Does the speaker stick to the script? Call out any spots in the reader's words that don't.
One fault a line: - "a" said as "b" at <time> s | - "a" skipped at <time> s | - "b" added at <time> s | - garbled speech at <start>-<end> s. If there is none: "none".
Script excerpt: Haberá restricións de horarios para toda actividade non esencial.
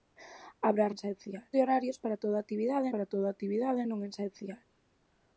- "restricións" said as "esencial" at 0.9 s
- "para toda actividade" added at 2.9 s